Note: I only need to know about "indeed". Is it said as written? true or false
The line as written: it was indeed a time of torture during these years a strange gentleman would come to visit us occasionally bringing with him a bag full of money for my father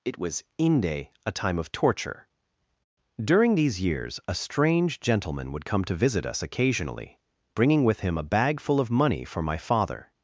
false